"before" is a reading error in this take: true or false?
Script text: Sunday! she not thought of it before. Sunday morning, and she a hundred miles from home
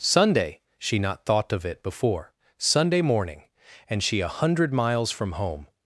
false